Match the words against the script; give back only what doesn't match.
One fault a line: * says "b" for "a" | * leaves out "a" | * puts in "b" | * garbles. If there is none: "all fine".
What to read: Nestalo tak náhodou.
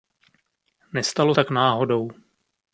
all fine